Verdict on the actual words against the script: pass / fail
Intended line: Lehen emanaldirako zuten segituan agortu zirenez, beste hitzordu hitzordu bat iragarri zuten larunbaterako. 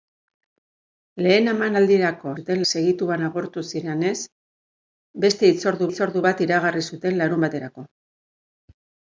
pass